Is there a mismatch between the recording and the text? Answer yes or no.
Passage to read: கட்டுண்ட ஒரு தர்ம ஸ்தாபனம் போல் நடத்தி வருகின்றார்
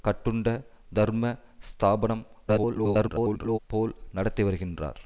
yes